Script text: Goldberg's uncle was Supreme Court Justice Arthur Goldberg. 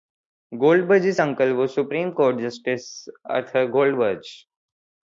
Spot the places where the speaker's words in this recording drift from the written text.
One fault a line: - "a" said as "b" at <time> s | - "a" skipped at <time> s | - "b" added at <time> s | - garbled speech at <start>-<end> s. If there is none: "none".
none